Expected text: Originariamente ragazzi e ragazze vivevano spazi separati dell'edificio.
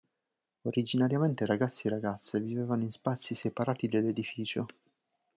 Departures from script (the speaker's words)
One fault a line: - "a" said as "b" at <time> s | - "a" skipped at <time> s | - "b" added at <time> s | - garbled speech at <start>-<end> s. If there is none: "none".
- "in" added at 2.8 s